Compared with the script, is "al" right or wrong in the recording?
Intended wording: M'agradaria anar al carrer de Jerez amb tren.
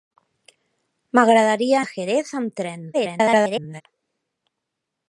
wrong